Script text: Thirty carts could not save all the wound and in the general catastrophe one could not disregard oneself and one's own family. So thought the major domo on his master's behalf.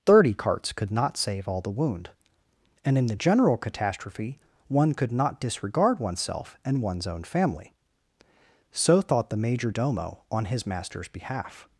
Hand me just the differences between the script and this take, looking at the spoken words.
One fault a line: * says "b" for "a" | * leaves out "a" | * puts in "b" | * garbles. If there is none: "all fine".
all fine